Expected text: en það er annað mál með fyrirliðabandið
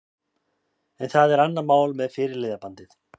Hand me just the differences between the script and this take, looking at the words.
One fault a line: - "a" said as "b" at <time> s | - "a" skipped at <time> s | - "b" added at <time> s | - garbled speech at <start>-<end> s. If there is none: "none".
none